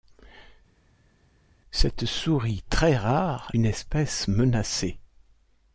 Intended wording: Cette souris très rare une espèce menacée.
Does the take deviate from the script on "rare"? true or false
false